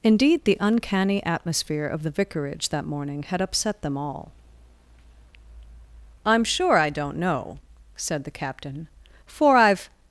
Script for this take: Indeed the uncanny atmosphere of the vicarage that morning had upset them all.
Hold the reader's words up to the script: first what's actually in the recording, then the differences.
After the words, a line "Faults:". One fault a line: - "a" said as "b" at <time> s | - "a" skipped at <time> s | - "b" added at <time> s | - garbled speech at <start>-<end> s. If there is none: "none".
Indeed the uncanny atmosphere of the vicarage that morning had upset them all. "I'm sure I don't know," said the captain, "for I've
Faults:
- "I'm sure I don't know said the captain for I've" added at 6.2 s